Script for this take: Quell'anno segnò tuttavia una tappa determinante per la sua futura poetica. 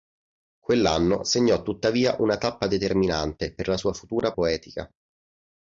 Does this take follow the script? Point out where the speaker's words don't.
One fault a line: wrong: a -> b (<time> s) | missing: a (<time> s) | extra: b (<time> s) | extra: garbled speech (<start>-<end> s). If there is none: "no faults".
no faults